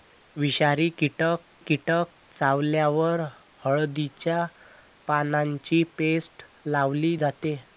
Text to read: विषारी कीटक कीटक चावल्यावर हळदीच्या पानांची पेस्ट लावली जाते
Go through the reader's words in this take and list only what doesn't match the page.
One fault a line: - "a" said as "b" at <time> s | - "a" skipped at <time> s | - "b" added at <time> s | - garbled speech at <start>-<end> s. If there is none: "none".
none